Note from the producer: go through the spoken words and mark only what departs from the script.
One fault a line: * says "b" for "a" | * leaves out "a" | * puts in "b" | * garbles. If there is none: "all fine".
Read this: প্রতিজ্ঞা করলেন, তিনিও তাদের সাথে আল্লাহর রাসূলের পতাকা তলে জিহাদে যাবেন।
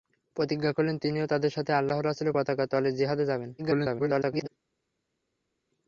* garbles